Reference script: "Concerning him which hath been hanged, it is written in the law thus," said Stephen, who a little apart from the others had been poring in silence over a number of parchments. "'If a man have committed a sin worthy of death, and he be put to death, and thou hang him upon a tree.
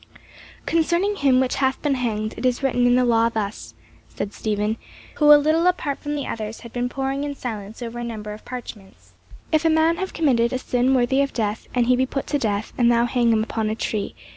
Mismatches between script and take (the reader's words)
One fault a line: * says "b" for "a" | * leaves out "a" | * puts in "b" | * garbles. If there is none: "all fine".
all fine